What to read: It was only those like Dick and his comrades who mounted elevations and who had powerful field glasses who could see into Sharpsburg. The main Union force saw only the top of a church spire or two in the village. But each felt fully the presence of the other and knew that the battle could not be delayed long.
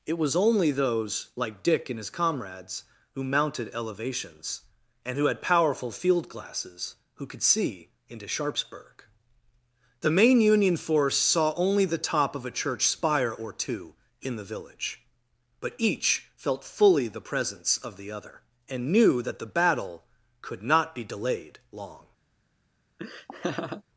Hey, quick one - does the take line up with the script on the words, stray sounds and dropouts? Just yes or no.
no